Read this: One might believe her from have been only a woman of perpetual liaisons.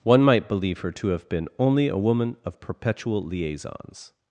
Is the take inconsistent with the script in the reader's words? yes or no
yes